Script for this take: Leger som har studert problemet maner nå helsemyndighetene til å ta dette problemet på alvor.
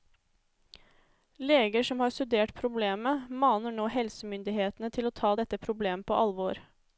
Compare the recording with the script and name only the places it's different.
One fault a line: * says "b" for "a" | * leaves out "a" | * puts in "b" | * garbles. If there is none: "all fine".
all fine